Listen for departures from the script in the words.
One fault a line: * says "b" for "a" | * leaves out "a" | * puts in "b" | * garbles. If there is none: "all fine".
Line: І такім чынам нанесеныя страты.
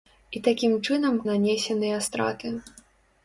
all fine